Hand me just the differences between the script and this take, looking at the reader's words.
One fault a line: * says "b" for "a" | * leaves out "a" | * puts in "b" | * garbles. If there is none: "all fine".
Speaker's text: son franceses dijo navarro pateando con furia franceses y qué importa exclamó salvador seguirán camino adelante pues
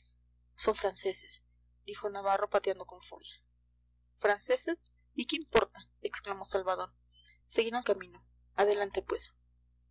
all fine